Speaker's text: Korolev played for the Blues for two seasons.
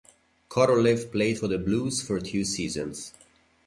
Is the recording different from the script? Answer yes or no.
no